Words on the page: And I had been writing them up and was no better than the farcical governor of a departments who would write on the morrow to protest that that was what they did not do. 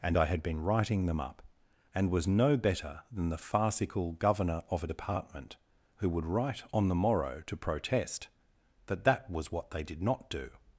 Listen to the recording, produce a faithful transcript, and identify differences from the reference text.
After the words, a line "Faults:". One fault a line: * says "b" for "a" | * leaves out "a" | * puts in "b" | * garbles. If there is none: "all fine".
And I had been writing them up and was no better than the farcical governor of a department who would write on the morrow to protest that that was what they did not do.
Faults:
* says "department" for "departments"